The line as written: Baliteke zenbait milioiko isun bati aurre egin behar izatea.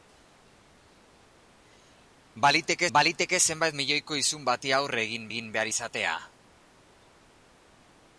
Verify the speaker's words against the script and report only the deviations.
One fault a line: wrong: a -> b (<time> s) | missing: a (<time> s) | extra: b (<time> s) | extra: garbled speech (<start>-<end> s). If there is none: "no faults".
extra: baliteke (3.0 s)
extra: egin (5.3 s)